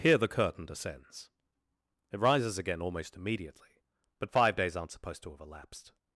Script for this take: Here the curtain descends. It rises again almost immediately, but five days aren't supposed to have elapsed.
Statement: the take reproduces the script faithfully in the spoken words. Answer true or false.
true